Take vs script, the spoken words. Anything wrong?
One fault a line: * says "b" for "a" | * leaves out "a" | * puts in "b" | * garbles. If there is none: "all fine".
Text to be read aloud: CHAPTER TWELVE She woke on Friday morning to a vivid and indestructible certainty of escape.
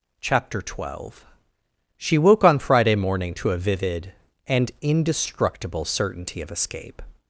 all fine